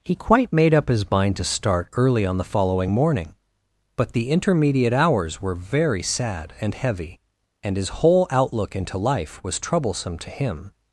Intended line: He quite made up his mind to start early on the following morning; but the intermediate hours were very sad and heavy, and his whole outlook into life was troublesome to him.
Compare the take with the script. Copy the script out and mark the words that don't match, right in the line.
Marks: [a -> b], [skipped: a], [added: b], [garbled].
He quite made up his mind to start early on the following morning; but the intermediate hours were very sad and heavy, and his whole outlook into life was troublesome to him.